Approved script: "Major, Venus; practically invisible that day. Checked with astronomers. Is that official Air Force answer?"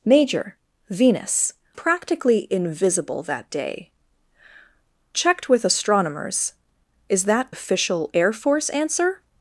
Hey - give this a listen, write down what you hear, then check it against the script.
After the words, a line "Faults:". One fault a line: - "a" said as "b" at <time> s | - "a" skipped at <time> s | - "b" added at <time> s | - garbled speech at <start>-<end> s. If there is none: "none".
"Major, Venus; practically invisible that day. Checked with astronomers. Is that official Air Force answer?"
Faults:
none